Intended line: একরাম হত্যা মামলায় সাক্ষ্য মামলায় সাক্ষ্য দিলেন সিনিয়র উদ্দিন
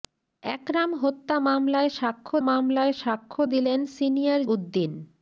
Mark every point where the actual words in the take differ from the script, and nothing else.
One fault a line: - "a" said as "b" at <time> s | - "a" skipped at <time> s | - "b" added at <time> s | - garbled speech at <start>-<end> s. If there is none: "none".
none